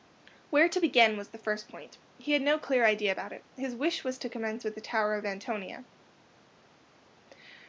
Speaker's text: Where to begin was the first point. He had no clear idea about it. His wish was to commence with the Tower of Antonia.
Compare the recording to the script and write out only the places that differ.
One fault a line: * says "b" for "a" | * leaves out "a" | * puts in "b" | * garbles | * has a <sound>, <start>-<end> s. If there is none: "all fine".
all fine